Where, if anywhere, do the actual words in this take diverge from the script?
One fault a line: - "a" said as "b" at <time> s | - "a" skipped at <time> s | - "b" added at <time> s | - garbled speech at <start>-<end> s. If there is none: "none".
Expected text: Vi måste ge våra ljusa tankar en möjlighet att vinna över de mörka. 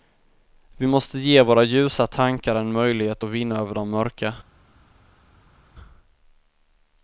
none